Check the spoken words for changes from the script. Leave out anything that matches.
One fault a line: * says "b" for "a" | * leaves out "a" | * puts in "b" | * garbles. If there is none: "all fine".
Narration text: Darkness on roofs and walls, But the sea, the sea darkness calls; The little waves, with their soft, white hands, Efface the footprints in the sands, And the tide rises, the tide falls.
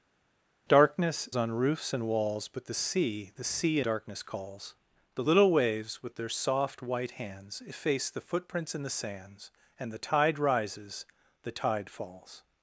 all fine